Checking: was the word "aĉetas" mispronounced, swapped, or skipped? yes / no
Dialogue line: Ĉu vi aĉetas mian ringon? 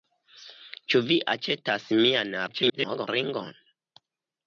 no